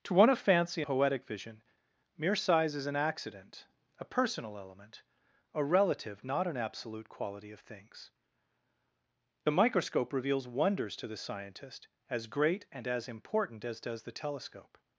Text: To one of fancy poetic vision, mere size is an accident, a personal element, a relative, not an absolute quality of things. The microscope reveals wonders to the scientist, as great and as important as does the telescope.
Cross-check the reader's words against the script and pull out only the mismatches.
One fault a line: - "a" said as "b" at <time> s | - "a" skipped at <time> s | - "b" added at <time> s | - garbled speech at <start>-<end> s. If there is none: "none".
none